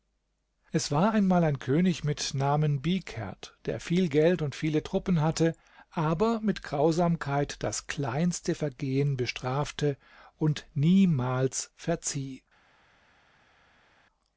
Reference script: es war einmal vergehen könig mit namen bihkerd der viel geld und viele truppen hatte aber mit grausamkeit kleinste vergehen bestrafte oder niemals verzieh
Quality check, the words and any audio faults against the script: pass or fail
fail